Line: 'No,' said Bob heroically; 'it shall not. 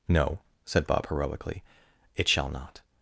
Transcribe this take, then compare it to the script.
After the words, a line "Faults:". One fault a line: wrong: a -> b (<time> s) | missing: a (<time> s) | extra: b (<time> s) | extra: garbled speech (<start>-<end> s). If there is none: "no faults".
'No,' said Bob heroically; 'it shall not.
Faults:
no faults